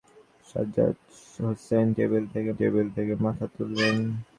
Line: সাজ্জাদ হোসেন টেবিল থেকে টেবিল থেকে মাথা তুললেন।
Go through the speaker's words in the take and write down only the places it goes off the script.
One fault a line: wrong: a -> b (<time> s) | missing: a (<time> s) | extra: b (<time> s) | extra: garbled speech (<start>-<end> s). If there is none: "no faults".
no faults